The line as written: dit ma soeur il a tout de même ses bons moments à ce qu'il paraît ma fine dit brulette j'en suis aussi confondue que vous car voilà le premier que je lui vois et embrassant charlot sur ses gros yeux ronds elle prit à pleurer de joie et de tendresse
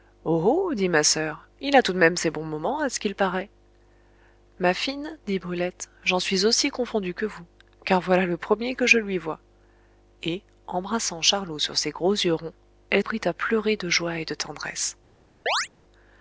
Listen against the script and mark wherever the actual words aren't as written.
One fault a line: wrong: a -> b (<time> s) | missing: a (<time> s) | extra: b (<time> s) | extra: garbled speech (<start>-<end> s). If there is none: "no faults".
no faults